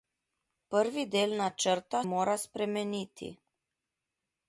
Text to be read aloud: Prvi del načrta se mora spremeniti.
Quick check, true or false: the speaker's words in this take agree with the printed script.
false